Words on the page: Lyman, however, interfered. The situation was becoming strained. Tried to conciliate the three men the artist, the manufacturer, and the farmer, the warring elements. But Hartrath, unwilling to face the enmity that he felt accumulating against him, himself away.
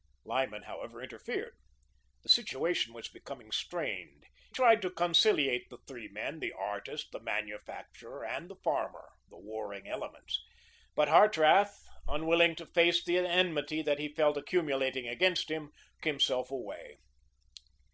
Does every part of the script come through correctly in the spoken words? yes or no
yes